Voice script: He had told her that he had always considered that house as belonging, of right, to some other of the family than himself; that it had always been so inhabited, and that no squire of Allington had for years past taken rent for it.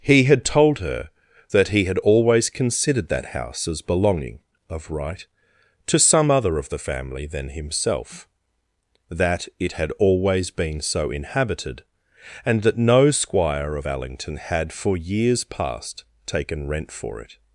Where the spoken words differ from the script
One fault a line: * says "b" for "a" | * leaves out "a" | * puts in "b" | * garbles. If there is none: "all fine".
all fine